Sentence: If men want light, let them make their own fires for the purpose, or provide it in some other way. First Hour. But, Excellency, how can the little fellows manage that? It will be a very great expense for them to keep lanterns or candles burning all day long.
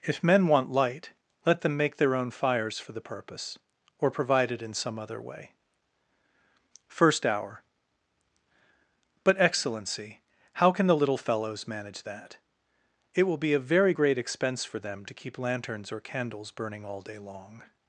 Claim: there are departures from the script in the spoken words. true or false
false